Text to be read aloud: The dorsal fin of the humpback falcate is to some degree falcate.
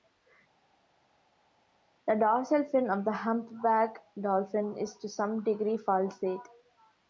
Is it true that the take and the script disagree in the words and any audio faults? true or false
true